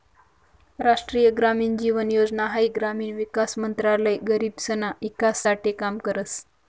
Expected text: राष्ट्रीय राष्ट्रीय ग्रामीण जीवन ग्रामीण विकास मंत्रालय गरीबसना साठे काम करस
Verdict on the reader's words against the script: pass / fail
fail